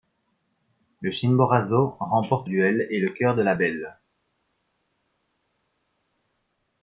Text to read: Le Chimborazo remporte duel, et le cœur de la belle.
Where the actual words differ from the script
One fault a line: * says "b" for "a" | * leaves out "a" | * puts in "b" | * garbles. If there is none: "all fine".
all fine